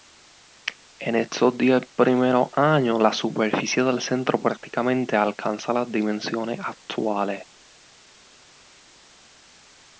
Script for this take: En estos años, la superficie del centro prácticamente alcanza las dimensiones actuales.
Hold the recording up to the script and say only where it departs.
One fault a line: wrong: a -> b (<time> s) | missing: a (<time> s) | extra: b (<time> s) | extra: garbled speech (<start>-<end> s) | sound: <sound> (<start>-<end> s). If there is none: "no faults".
extra: diez primeros (1.6 s)